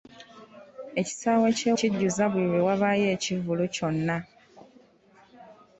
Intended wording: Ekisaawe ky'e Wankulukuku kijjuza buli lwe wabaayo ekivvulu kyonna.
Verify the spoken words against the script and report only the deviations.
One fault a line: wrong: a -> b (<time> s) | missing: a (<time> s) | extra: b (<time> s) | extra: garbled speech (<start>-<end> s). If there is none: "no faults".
missing: Wankulukuku (1.7 s)